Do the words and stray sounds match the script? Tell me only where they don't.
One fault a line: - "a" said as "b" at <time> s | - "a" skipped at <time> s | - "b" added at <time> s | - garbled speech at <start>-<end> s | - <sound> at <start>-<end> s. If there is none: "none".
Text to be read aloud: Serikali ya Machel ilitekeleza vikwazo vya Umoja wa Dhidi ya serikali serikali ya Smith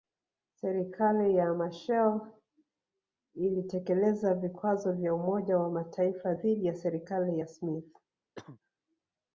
- "Mataifa" added at 5.7 s
- "serikali" skipped at 7.4 s
- cough at 8.3-8.6 s